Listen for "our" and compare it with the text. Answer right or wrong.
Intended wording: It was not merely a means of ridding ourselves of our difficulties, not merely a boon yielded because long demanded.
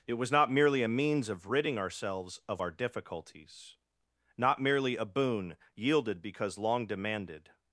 right